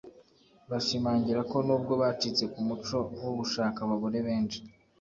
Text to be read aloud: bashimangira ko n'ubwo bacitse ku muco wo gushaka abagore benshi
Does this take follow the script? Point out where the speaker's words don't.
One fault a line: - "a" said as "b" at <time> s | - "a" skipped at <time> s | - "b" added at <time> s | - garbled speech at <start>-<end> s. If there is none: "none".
none